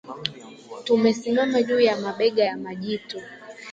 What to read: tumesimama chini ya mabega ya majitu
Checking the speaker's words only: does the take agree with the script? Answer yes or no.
no